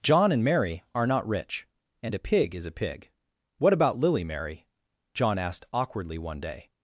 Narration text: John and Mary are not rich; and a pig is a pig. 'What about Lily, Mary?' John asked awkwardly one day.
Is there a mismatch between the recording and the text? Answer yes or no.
no